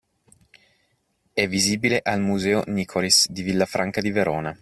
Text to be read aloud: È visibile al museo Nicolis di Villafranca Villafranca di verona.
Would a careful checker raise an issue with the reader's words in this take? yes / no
yes